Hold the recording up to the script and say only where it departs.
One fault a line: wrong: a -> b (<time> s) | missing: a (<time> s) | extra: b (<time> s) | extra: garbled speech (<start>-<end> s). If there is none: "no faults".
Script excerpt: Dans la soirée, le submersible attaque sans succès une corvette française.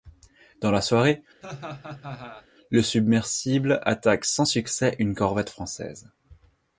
no faults